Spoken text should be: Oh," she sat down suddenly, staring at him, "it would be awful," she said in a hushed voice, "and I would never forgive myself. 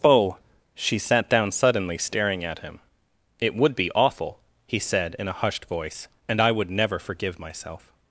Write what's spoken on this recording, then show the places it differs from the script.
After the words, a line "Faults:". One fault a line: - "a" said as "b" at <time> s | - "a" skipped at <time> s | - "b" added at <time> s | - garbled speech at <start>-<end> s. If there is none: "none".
Oh," she sat down suddenly, staring at him, "it would be awful," he said in a hushed voice, "and I would never forgive myself.
Faults:
- "she" said as "he" at 4.7 s